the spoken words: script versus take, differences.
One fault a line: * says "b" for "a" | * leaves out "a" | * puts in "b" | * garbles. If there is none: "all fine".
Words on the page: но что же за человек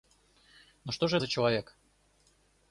all fine